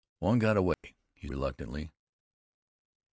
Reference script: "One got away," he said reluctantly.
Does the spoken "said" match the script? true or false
false